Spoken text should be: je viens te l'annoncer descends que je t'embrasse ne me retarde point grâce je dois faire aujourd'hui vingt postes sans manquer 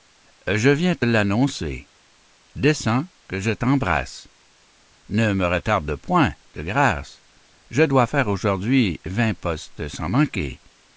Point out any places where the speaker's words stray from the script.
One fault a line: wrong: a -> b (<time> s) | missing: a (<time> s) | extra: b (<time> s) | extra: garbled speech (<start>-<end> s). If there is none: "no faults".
extra: de (6.5 s)